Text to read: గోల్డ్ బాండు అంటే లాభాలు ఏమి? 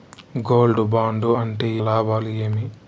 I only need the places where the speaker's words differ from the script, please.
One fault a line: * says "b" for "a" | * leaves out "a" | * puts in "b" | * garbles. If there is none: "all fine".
all fine